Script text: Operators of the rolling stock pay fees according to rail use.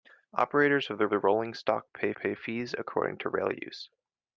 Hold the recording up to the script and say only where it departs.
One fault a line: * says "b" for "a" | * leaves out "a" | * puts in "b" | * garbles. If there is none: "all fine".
* puts in "the"
* puts in "pay"